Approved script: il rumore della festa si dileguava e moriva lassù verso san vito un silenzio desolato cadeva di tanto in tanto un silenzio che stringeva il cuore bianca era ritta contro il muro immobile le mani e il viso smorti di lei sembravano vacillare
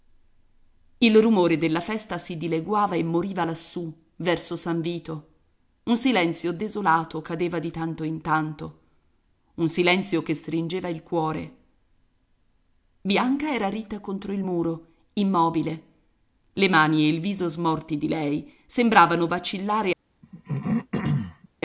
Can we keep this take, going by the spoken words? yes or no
yes